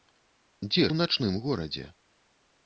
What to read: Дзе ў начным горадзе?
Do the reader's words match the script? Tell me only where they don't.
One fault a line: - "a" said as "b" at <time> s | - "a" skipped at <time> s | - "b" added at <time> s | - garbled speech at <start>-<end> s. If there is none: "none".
none